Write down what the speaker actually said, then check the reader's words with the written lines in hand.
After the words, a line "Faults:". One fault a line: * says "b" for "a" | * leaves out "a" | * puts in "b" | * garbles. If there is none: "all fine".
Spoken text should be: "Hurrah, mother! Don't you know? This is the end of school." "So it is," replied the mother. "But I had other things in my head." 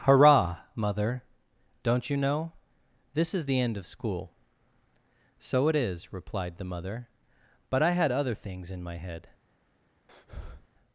"Hurrah, mother! Don't you know? This is the end of school." "So it is," replied the mother. "But I had other things in my head."
Faults:
all fine